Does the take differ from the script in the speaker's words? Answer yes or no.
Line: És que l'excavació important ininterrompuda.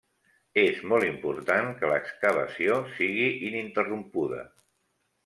yes